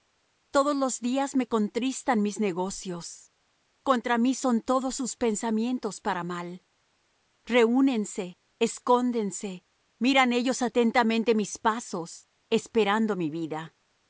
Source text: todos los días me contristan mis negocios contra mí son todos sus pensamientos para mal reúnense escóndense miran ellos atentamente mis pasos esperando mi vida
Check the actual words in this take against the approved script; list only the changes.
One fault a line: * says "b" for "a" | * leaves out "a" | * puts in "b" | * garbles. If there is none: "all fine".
all fine